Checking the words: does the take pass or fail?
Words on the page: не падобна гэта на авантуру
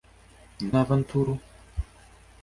fail